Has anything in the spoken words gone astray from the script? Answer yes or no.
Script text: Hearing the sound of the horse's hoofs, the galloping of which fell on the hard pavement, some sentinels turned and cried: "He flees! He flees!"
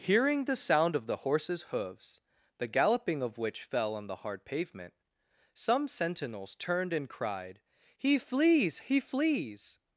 no